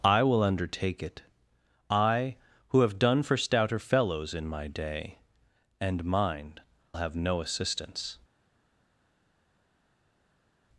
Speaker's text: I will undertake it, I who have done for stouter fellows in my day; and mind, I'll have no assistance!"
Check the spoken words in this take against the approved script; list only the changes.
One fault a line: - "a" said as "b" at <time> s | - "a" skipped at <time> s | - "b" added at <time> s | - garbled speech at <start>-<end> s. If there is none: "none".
- "I'll" skipped at 6.6 s